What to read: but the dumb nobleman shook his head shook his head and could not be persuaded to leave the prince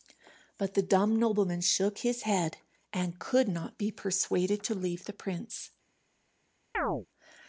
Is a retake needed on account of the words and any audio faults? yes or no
yes